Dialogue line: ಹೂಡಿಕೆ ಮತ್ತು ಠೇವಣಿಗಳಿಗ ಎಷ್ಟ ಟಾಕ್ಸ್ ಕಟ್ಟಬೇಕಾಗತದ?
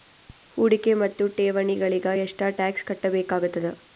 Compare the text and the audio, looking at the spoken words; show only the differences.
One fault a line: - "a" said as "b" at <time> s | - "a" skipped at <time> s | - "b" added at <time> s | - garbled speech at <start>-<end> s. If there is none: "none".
none